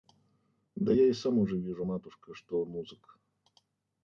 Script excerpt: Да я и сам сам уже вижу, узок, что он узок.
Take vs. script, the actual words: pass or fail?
fail